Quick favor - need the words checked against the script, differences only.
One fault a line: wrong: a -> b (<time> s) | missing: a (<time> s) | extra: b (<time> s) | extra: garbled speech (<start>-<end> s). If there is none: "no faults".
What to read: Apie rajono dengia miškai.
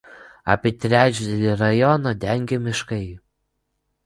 extra: trečdalį (0.8 s)